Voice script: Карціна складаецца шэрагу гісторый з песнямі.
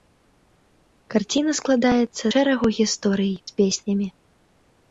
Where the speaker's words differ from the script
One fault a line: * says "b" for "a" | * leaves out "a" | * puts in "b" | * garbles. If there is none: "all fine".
all fine